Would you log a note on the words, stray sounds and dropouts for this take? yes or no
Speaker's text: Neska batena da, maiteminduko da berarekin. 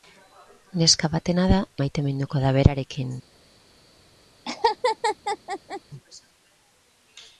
yes